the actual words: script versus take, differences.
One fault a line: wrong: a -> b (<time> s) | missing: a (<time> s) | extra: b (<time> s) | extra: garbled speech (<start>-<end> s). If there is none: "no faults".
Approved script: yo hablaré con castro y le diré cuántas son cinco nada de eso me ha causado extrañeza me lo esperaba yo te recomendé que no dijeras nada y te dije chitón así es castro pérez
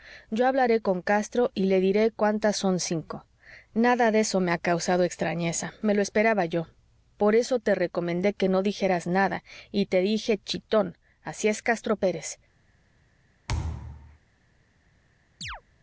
extra: por eso (7.2 s)